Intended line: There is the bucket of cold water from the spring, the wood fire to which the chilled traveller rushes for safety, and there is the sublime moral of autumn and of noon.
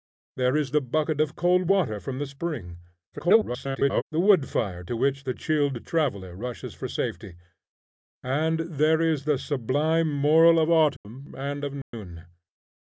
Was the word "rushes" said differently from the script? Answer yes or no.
no